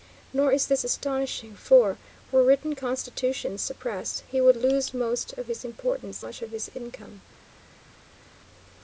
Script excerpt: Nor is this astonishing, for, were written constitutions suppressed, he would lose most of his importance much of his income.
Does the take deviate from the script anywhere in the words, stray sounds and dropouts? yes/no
no